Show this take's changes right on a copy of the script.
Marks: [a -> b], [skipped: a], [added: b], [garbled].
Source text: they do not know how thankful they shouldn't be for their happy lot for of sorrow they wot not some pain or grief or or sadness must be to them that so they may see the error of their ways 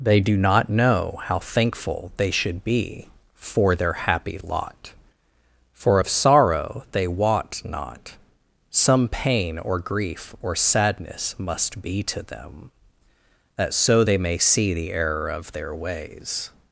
they do not know how thankful they [shouldn't -> should] be for their happy lot for of sorrow they wot not some pain or grief or [skipped: or] sadness must be to them that so they may see the error of their ways